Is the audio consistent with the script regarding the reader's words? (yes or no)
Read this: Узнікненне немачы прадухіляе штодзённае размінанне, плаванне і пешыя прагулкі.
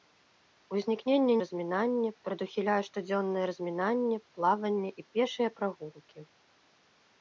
no